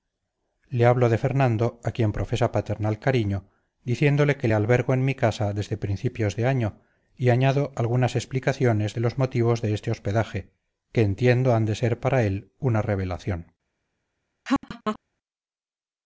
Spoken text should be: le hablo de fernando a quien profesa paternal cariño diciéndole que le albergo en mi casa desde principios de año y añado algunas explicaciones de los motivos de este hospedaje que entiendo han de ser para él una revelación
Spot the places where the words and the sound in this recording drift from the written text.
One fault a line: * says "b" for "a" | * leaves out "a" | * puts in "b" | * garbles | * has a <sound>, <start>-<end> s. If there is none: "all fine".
* has a laugh, 14.4-15.0 s